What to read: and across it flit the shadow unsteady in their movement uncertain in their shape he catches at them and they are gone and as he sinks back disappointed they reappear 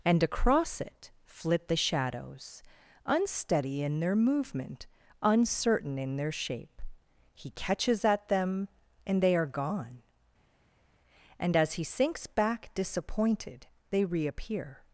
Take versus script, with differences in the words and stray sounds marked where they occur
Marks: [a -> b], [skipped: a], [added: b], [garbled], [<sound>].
and across it flit the [shadow -> shadows] unsteady in their movement uncertain in their shape he catches at them and they are gone and as he sinks back disappointed they reappear